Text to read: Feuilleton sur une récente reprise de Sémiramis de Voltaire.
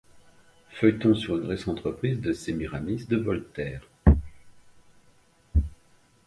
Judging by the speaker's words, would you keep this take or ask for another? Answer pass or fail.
pass